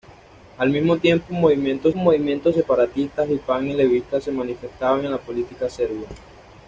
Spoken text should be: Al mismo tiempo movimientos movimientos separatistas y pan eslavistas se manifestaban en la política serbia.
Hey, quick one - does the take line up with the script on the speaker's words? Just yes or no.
yes